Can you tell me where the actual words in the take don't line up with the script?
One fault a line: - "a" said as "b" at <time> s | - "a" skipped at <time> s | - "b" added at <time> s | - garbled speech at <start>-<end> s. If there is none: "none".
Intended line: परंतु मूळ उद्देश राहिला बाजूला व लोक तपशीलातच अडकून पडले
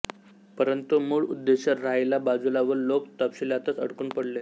none